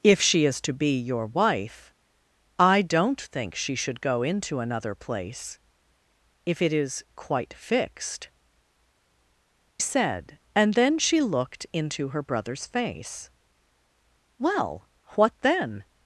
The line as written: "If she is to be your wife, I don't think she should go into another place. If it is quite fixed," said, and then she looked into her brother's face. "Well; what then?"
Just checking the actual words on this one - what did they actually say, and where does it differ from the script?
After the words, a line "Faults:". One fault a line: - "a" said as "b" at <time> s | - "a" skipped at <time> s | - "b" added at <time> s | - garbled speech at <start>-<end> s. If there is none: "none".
"If she is to be your wife, I don't think she should go into another place. If it is quite fixed," said, and then she looked into her brother's face. "Well; what then?"
Faults:
none